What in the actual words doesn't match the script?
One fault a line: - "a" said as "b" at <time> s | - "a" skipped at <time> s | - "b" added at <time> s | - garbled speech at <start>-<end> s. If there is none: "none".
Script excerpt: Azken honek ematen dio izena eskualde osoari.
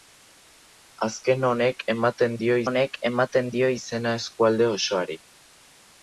- "honek ematen dio" added at 2.7 s